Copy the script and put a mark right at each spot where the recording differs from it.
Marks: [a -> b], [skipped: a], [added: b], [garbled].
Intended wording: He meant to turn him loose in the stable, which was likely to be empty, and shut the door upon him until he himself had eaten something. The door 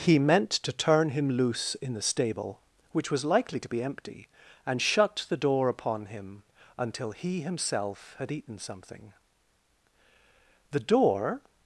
He meant to turn him loose in the stable, which was likely to be empty, and shut the door upon him until he himself had eaten something. The door